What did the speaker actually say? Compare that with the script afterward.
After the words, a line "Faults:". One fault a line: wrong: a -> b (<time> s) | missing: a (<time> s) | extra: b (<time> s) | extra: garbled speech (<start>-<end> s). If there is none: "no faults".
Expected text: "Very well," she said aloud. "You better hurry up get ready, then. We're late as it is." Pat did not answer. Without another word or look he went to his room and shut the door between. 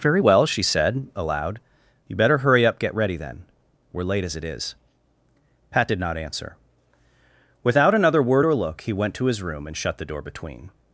"Very well," she said aloud. "You better hurry up get ready, then. We're late as it is." Pat did not answer. Without another word or look he went to his room and shut the door between.
Faults:
no faults